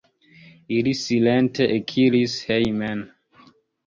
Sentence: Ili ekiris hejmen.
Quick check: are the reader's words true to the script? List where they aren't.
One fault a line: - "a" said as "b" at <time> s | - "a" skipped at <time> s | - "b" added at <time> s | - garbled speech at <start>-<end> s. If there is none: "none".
- "silente" added at 1.0 s